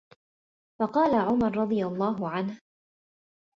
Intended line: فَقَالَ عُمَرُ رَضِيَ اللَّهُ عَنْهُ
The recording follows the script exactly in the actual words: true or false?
true